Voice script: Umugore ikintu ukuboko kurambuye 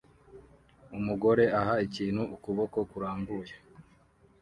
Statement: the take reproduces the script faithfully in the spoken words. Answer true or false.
false